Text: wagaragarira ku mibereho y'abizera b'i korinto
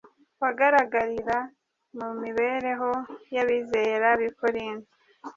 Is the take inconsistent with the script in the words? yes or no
yes